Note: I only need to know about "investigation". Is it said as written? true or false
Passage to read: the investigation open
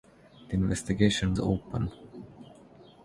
true